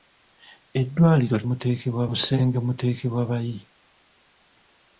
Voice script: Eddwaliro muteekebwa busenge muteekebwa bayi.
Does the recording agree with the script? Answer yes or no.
yes